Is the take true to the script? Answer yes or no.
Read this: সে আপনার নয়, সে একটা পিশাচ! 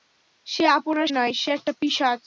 yes